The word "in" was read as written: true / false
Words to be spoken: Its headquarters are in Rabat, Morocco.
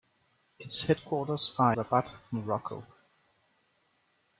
false